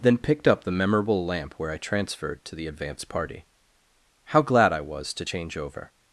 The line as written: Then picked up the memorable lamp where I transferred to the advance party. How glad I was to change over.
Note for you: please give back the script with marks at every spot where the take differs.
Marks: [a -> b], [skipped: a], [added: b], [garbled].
Then picked up the memorable lamp where I transferred to the advance party. How glad I was to change over.